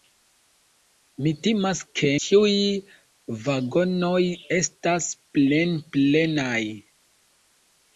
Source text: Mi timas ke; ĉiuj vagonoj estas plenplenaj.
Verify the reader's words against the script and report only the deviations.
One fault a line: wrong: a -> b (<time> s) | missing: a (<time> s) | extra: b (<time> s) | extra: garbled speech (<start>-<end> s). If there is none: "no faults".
no faults